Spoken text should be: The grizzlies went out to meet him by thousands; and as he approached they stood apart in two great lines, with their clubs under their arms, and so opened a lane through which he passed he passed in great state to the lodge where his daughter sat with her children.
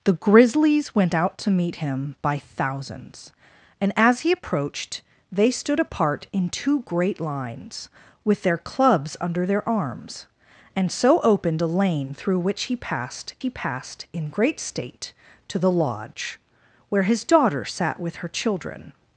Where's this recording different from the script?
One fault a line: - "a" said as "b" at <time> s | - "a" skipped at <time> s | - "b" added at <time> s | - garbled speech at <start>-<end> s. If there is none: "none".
none